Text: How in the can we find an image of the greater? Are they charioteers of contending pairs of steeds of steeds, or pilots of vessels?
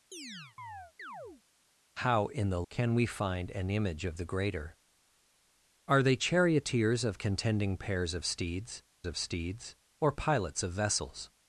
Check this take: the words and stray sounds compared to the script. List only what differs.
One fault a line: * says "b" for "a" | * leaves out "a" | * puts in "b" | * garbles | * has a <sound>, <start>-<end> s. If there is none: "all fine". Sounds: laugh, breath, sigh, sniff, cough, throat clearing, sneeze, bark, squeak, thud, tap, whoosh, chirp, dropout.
* has a chirp, 0.1-1.4 s